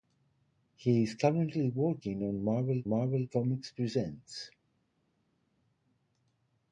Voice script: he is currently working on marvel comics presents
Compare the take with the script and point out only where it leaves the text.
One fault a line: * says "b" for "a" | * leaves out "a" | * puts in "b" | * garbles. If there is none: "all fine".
* puts in "marvel"